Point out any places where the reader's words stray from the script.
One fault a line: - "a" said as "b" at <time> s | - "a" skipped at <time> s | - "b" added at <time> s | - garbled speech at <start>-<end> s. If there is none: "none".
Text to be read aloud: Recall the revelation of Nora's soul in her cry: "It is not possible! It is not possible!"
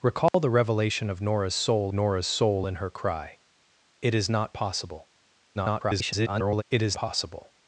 - "Nora's soul" added at 1.9 s
- garbled speech at 5.5-6.6 s
- "not" skipped at 7.0 s